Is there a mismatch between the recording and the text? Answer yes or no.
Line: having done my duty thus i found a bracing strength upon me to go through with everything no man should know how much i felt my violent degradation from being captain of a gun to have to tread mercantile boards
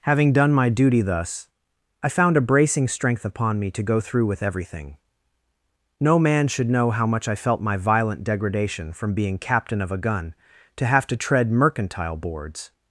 no